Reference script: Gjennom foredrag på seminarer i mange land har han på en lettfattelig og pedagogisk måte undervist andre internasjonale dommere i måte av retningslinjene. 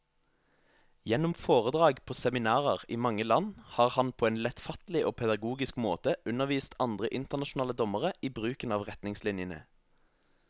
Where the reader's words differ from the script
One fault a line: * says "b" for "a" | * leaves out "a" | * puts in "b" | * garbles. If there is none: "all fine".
* says "bruken" for "måte"